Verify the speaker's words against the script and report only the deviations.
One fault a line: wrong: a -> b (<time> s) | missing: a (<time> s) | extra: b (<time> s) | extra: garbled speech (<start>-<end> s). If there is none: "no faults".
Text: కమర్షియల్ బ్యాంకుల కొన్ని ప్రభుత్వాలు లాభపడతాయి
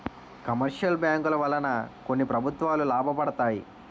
extra: వలన (1.4 s)